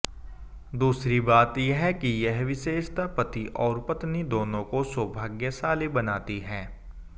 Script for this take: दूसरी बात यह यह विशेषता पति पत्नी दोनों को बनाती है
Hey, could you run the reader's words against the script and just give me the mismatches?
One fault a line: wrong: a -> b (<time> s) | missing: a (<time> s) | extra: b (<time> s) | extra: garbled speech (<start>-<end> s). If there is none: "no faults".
extra: कि (1.9 s)
extra: और (3.6 s)
extra: सौभाग्यशाली (4.8 s)